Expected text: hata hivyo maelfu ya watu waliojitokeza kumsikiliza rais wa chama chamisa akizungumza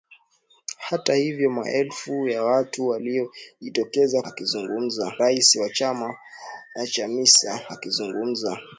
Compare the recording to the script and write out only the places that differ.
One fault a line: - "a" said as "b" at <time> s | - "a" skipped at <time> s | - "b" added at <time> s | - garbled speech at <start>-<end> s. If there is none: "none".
- "kumsikiliza" said as "akizungumza" at 4.2 s